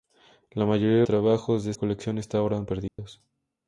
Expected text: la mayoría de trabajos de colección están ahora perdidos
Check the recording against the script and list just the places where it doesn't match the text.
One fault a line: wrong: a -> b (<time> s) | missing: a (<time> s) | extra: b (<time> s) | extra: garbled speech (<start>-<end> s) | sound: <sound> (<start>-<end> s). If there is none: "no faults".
sound: dropout (2.9-3.0 s)